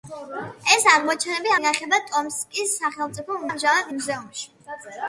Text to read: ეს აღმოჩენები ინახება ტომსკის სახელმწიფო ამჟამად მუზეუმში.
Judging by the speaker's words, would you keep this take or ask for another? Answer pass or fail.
pass